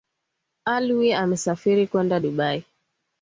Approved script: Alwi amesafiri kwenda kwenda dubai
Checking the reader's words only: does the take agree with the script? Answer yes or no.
no